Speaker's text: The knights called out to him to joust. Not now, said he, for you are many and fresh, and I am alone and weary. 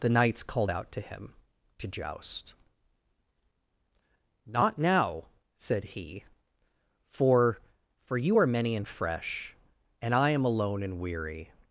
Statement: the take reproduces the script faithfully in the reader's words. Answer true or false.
false